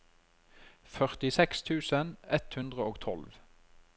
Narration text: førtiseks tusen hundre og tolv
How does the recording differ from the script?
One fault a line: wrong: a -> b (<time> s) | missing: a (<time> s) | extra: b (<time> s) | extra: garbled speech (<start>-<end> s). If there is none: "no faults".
extra: ett (2.4 s)